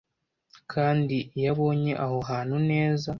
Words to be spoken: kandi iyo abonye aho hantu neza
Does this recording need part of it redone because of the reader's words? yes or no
no